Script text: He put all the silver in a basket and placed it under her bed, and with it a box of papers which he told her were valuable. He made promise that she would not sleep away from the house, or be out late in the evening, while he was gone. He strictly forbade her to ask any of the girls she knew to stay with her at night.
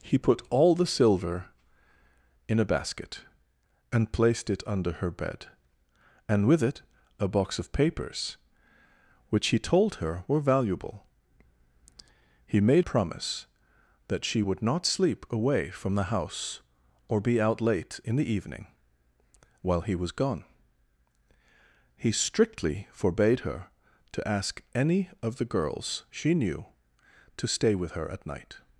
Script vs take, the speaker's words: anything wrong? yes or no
no